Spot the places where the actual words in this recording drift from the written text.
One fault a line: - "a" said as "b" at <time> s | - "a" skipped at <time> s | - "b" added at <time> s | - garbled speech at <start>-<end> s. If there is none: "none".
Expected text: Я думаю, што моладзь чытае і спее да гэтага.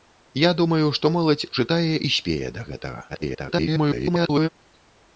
- garbled speech at 3.1-4.5 s